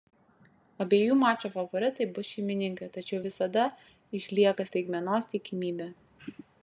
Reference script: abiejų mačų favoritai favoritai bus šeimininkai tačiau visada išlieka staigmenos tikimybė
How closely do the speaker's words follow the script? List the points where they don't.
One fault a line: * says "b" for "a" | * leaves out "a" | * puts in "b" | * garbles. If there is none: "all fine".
* leaves out "favoritai"